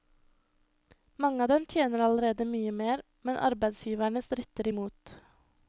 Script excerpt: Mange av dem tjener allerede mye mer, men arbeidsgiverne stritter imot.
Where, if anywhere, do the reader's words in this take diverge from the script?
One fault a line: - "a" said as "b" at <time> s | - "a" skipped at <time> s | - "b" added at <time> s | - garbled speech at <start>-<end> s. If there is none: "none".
none